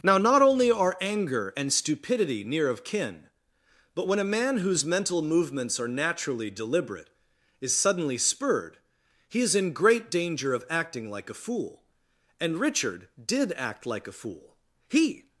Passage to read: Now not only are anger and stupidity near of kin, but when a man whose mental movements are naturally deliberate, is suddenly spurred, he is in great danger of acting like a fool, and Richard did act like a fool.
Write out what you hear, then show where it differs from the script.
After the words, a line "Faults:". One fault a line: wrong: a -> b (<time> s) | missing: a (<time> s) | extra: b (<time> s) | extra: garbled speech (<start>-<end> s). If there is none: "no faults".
Now not only are anger and stupidity near of kin, but when a man whose mental movements are naturally deliberate, is suddenly spurred, he is in great danger of acting like a fool, and Richard did act like a fool. He
Faults:
extra: He (14.9 s)